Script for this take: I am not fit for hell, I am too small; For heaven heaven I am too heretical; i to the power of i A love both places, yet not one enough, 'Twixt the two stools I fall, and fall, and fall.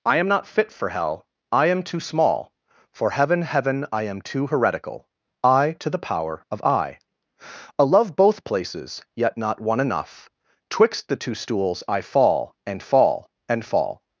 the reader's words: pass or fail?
pass